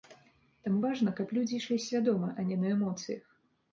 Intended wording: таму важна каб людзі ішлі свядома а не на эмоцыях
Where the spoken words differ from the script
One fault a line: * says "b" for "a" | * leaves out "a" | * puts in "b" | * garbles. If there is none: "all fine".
all fine